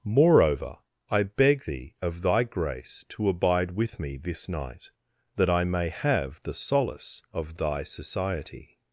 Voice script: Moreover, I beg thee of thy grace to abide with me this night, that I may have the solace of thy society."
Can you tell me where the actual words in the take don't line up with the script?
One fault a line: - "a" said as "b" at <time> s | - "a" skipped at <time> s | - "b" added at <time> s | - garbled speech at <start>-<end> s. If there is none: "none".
none